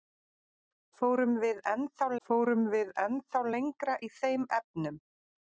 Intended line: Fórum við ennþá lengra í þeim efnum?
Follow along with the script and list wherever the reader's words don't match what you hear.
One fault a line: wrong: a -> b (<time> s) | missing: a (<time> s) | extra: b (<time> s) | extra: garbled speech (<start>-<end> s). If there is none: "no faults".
extra: fórum við ennþá (2.3 s)